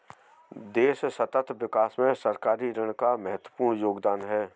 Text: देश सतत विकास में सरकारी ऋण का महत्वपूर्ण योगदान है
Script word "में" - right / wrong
right